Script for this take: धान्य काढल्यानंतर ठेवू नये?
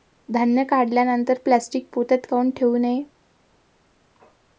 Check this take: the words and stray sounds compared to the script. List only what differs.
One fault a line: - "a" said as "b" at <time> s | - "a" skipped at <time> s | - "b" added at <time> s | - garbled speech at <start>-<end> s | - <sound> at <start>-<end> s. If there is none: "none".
- "प्लॅस्टीक पोत्यात काऊन" added at 1.4 s